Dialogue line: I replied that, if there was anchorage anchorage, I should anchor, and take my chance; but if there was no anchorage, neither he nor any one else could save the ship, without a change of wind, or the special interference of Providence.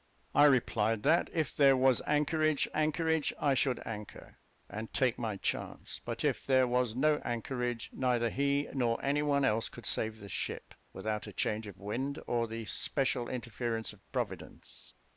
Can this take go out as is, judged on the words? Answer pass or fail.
pass